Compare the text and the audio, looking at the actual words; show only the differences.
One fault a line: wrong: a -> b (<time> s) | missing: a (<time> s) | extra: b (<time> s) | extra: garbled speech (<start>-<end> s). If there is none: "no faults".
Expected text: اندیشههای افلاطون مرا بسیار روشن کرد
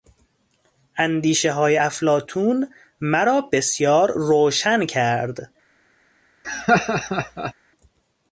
no faults